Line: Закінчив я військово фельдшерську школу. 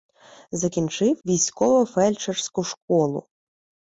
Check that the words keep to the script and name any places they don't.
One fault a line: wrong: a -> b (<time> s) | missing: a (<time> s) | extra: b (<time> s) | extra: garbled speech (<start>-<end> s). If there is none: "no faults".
missing: я (1.2 s)